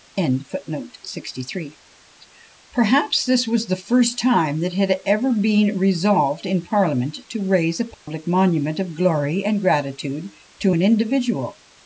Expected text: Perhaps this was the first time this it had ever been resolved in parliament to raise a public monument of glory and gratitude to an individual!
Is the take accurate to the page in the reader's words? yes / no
no